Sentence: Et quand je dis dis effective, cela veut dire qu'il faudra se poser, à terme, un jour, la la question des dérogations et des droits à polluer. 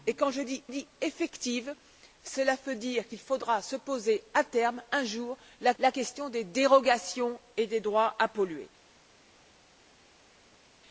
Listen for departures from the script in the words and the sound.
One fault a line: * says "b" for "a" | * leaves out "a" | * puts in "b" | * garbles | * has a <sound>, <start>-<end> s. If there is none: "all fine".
all fine